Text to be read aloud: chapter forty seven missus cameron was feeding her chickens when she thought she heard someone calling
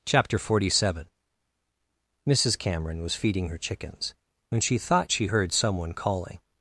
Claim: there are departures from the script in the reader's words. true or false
false